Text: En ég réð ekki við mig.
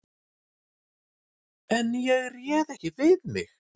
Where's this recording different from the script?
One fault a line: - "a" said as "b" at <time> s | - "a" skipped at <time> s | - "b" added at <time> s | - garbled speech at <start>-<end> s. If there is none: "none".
none